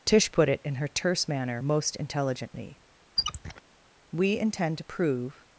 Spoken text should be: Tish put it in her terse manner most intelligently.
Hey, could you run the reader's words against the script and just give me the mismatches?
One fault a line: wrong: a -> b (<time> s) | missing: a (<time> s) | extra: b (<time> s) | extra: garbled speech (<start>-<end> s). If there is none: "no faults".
extra: We intend to prove (4.1 s)